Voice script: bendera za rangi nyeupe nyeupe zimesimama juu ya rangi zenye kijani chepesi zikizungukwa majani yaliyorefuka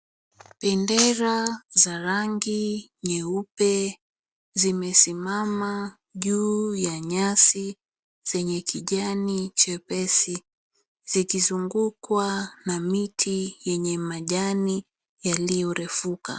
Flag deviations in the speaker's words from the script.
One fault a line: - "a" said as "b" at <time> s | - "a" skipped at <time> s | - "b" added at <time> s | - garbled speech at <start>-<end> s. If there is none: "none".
- "nyeupe" skipped at 4.0 s
- "rangi" said as "nyasi" at 7.0 s
- "na miti yenye" added at 12.6 s